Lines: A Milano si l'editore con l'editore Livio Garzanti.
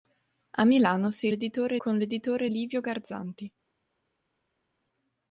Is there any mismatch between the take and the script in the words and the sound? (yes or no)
no